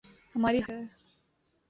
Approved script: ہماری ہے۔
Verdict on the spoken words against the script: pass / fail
pass